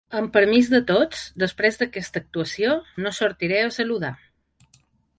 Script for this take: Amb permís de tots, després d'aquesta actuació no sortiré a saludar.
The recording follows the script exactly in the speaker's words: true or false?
true